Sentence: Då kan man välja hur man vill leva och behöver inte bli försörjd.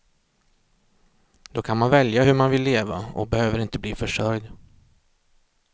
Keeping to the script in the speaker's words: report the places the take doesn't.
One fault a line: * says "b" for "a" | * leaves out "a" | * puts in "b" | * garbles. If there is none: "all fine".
all fine